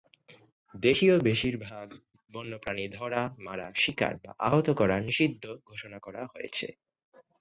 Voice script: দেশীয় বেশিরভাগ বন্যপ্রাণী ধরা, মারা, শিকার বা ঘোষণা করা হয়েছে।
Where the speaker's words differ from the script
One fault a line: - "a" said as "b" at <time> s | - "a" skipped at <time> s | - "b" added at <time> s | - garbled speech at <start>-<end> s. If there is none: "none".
- "আহত করা নিষিদ্ধ" added at 4.5 s